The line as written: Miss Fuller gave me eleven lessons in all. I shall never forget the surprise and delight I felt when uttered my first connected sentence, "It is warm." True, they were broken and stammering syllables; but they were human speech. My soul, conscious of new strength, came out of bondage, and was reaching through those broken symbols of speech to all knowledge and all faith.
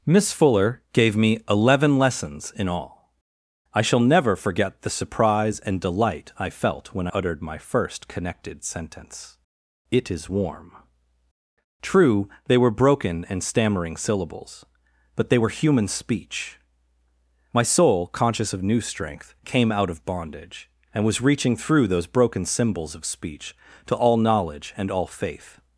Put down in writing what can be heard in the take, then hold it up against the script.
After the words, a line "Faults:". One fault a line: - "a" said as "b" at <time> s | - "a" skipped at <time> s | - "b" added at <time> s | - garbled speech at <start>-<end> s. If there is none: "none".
Miss Fuller gave me eleven lessons in all. I shall never forget the surprise and delight I felt when uttered my first connected sentence, "It is warm." True, they were broken and stammering syllables; but they were human speech. My soul, conscious of new strength, came out of bondage, and was reaching through those broken symbols of speech to all knowledge and all faith.
Faults:
none